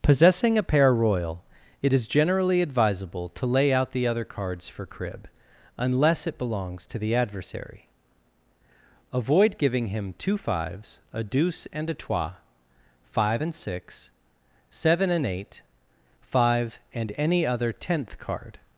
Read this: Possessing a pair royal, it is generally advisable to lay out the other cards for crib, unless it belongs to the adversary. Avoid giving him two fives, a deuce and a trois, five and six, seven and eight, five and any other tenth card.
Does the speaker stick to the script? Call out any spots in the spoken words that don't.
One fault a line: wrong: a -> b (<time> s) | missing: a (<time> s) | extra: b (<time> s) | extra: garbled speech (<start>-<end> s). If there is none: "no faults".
no faults